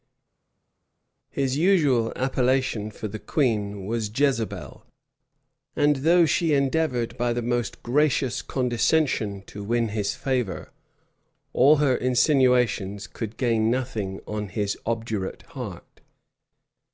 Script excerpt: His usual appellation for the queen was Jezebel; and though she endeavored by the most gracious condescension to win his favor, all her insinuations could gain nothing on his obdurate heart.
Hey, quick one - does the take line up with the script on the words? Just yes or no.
yes